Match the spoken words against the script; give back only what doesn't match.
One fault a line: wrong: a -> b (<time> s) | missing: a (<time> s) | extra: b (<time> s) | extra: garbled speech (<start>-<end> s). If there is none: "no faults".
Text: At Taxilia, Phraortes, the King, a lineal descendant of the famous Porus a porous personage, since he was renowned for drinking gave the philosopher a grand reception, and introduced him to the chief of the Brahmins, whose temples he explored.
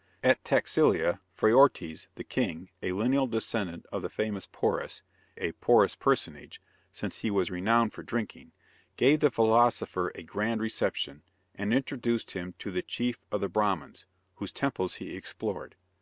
no faults